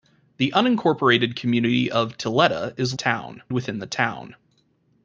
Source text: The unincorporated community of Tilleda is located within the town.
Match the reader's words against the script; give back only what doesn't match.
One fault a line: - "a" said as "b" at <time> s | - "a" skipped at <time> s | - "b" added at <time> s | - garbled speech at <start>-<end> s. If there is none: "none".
- "located" said as "town" at 2.9 s